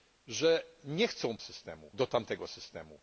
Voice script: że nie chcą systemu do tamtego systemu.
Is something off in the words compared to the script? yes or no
no